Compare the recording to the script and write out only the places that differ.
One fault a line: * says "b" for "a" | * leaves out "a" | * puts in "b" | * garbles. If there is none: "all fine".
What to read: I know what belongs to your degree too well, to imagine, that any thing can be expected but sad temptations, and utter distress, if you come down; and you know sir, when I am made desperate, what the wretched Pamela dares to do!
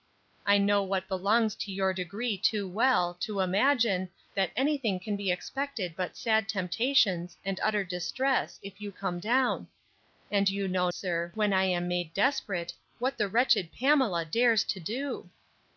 all fine